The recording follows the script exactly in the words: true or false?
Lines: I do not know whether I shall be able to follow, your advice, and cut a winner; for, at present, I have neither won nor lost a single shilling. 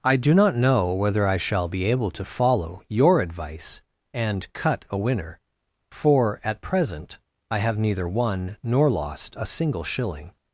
true